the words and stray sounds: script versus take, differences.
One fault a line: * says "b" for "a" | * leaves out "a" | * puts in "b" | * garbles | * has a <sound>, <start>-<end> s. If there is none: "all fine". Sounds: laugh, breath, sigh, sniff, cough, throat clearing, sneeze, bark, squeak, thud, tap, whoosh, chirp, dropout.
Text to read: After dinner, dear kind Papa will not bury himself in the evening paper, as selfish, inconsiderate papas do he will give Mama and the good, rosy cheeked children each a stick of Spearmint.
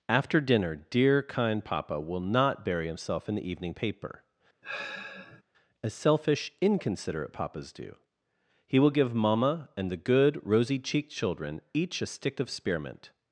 * has a sigh, 4.6-5.4 s